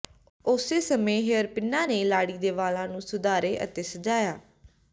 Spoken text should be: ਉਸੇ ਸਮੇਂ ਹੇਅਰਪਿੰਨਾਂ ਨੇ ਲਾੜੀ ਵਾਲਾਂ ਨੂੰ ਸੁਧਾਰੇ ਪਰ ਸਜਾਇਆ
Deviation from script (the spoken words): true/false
true